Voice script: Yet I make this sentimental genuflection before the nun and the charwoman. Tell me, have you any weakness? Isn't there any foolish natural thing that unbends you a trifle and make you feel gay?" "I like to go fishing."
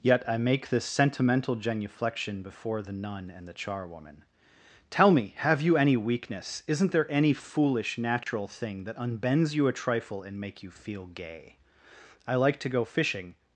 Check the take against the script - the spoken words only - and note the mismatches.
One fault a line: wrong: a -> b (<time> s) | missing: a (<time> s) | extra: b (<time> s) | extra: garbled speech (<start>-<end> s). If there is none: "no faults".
no faults